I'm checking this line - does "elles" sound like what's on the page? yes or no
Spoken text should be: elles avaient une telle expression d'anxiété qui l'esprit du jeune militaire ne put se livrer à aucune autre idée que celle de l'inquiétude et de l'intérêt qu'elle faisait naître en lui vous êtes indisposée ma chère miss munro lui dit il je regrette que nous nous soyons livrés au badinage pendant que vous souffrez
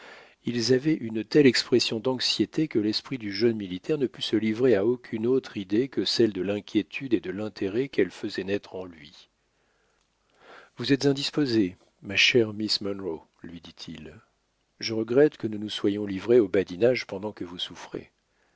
no